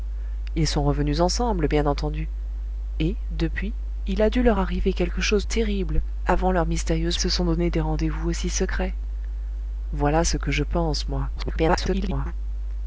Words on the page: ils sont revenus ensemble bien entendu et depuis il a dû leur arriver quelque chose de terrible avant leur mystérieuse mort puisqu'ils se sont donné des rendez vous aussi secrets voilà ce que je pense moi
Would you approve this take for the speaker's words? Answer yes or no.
no